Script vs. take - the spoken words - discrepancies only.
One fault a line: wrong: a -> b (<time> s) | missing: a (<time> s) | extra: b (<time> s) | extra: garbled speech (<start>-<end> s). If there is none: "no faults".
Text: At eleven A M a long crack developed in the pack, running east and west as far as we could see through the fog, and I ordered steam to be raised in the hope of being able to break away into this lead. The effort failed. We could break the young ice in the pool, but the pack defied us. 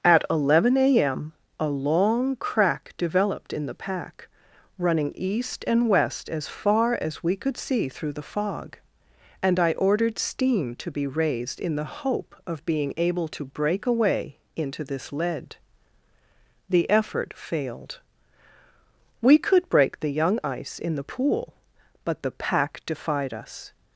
no faults